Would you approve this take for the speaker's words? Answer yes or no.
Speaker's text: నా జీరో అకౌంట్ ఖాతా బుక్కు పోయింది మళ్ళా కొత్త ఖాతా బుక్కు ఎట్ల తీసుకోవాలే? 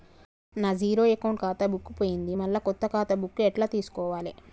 yes